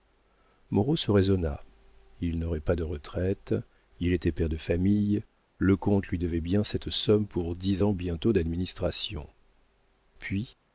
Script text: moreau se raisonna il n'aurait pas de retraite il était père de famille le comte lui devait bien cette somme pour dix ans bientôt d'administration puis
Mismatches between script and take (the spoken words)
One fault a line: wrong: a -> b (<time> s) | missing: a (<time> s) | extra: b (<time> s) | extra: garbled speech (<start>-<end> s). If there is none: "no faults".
no faults